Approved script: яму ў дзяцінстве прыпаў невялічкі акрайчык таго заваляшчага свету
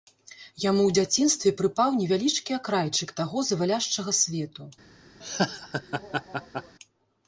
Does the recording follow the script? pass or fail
pass